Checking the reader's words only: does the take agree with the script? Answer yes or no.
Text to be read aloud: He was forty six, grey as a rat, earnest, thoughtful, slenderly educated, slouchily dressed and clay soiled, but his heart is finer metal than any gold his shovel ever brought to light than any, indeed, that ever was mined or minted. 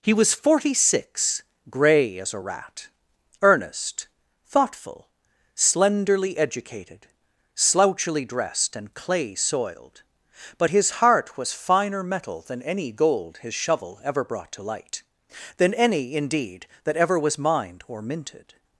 no